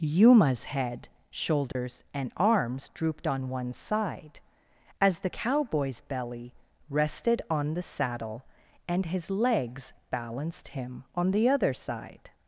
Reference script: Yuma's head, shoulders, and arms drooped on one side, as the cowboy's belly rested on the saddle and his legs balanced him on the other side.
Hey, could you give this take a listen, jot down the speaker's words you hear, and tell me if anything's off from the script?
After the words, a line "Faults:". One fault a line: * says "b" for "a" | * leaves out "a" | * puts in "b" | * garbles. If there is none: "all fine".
Yuma's head, shoulders, and arms drooped on one side, as the cowboy's belly rested on the saddle and his legs balanced him on the other side.
Faults:
all fine